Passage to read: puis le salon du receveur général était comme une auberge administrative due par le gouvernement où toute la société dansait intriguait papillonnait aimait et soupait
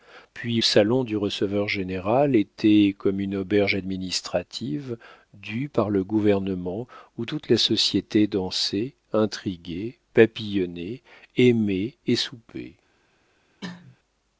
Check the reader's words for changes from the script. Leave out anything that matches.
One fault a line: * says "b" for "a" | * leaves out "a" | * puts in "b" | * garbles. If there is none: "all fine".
* leaves out "le"